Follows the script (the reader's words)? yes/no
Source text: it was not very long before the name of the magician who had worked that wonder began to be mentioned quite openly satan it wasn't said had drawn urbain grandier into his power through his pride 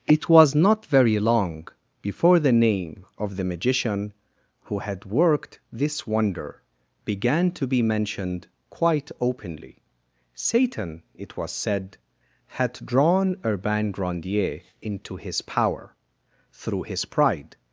no